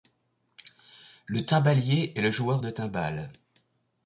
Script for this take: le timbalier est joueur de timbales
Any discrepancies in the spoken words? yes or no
yes